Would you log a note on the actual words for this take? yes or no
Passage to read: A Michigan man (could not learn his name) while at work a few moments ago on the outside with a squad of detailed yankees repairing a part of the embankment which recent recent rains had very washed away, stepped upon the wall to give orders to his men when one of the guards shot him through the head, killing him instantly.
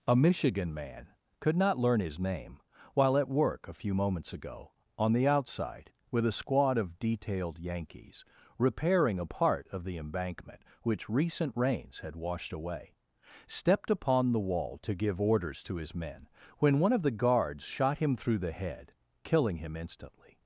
yes